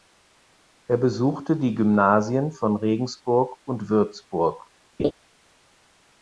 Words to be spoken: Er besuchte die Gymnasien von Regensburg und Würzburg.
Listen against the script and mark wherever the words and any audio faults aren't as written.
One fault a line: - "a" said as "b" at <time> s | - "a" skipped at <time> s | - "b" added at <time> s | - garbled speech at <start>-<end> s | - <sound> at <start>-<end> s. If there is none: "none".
- laugh at 5.0-5.1 s